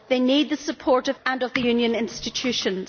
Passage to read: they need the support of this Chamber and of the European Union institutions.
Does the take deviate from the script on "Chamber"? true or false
true